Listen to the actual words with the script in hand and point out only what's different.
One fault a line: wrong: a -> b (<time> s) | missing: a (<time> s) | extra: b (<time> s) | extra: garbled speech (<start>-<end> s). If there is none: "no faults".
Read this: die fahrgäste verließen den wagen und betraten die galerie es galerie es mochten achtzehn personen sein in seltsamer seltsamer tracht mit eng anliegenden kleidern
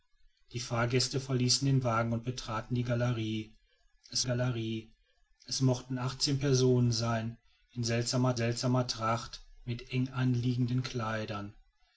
no faults